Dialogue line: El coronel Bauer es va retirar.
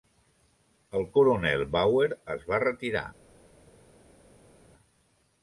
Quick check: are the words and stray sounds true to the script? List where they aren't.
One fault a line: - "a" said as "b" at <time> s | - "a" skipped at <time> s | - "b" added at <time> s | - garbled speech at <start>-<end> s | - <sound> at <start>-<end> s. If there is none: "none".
none